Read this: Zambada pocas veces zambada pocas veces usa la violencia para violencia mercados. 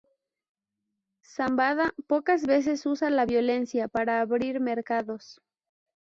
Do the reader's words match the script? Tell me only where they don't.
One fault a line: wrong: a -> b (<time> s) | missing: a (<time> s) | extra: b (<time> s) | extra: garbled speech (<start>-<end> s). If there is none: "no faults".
missing: zambada pocas veces (2.9 s)
wrong: violencia -> abrir (4.2 s)